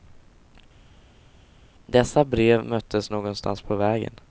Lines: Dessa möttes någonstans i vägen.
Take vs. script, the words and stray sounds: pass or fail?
fail